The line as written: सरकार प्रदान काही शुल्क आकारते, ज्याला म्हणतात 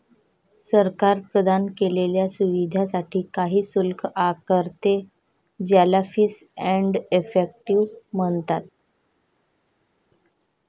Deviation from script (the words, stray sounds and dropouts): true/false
true